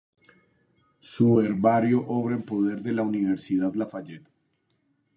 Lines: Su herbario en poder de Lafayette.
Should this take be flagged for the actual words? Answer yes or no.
yes